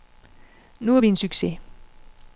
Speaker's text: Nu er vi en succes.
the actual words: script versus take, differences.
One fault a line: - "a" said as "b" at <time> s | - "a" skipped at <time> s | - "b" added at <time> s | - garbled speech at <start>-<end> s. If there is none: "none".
none